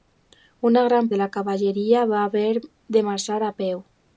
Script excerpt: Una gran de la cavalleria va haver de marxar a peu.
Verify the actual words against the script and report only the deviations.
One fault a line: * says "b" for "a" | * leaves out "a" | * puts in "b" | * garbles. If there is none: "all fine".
all fine